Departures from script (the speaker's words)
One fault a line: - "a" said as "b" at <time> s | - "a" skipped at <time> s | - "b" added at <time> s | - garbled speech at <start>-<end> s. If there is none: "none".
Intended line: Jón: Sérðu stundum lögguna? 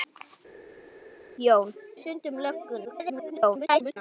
- "Sérðu" skipped at 1.7 s
- garbled speech at 2.8-4.0 s